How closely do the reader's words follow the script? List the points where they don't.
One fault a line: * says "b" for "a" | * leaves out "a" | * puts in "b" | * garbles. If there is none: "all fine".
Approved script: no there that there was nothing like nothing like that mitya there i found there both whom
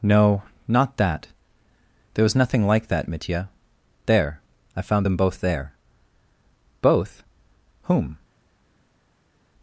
* says "not" for "there"
* leaves out "nothing like"
* puts in "them both"